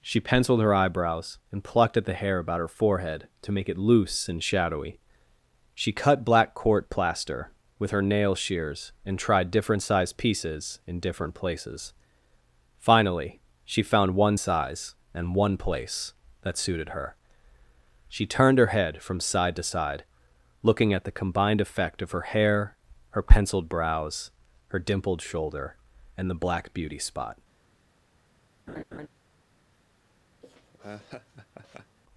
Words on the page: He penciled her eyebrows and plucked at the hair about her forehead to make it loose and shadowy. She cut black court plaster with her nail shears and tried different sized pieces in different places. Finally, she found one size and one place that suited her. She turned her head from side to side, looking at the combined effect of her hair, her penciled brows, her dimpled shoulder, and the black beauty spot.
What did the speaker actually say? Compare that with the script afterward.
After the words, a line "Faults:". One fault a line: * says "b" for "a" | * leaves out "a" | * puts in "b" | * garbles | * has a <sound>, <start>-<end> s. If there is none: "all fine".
She penciled her eyebrows and plucked at the hair about her forehead to make it loose and shadowy. She cut black court plaster with her nail shears and tried different sized pieces in different places. Finally, she found one size and one place that suited her. She turned her head from side to side, looking at the combined effect of her hair, her penciled brows, her dimpled shoulder, and the black beauty spot.
Faults:
* says "She" for "He"
* has a laugh, 28.7-29.1 s
* has a laugh, 30.4-32.0 s